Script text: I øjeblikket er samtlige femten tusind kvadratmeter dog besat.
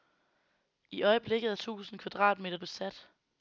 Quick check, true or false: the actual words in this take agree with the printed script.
false